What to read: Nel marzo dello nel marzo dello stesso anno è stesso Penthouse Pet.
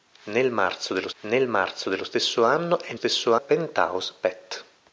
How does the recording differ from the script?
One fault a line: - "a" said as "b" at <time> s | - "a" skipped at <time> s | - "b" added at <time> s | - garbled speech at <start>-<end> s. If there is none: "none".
none